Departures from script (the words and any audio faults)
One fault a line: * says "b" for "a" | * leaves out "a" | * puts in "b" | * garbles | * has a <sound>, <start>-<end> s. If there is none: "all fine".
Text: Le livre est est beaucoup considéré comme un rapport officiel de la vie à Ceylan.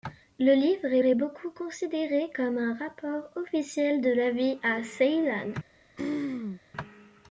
* has a throat clearing, 6.0-6.6 s